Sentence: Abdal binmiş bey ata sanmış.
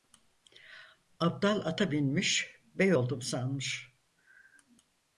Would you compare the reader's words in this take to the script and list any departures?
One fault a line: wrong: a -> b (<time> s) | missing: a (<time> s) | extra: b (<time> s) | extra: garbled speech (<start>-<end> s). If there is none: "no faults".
extra: ata (1.6 s)
wrong: ata -> oldum (2.9 s)